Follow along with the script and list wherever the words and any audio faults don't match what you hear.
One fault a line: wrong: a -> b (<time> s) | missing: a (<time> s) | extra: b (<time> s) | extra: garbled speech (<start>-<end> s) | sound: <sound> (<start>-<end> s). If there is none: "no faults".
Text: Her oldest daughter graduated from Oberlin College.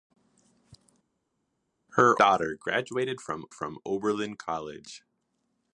missing: oldest (2.2 s)
extra: from (3.5 s)